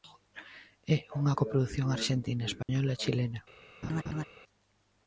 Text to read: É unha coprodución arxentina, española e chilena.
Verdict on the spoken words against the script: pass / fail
pass